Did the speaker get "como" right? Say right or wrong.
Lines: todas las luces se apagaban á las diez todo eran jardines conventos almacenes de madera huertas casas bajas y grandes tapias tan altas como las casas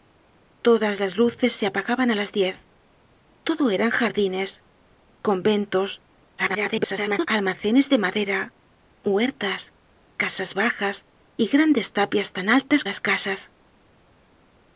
wrong